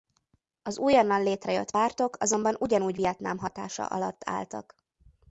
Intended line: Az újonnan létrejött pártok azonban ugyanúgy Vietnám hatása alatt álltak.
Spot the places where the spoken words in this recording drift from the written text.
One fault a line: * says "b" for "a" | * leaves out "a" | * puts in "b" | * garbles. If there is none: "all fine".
all fine